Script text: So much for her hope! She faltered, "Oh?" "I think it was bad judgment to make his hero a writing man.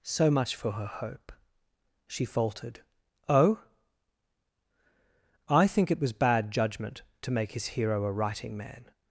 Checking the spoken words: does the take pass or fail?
pass